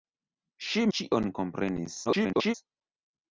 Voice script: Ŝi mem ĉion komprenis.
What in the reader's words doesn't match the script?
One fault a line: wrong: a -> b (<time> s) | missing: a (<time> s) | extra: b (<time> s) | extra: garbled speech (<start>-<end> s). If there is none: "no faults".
missing: mem (0.8 s)
extra: garbled speech (2.1-2.5 s)